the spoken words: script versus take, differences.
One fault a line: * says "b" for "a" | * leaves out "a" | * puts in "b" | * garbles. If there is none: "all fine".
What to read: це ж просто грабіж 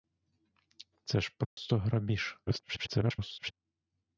* garbles